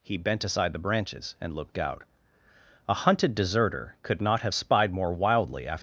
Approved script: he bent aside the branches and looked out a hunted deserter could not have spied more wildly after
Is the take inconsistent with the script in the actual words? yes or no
no